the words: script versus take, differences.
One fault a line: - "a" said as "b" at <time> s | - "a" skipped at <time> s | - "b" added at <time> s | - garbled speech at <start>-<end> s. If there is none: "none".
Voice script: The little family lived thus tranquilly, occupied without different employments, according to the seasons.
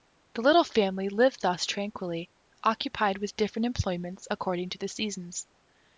- "without" said as "with" at 3.2 s